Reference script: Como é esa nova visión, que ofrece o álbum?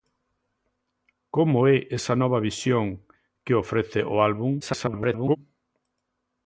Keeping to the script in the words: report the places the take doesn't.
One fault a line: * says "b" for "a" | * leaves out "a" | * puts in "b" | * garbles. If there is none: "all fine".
* garbles